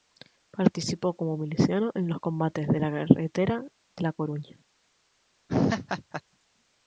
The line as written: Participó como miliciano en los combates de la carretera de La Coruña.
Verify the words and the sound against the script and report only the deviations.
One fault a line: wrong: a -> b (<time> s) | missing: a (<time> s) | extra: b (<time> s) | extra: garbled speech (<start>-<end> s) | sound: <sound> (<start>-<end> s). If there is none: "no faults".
sound: laugh (5.5-6.2 s)